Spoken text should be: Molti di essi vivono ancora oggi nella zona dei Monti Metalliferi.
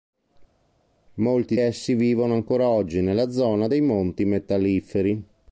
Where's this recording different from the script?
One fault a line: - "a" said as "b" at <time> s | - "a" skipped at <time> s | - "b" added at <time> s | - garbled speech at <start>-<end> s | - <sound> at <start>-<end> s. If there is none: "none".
- "di" skipped at 1.6 s